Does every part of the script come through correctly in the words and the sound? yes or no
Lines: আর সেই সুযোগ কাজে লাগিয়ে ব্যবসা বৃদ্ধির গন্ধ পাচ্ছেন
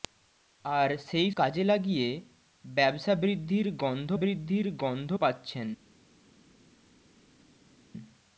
no